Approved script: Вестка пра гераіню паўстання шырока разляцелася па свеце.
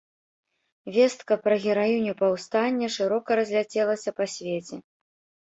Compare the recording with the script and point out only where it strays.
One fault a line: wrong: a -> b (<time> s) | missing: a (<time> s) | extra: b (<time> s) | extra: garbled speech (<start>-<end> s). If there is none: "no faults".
no faults